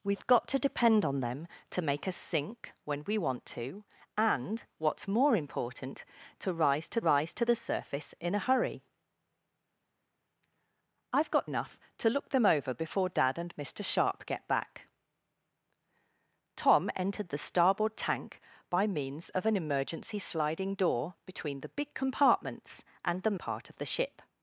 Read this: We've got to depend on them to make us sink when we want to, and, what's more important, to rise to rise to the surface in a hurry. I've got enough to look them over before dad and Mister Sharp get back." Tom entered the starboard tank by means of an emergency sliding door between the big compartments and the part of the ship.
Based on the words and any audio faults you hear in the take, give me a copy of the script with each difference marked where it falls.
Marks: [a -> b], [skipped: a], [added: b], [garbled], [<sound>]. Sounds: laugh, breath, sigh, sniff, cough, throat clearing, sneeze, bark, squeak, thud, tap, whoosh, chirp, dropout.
We've got to depend on them to make us sink when we want to, and, what's more important, to rise to rise to the surface in a hurry. I've got enough to look them over before dad and Mister Sharp get back." Tom entered the starboard tank by means of an emergency sliding door between the big compartments and the part of the ship.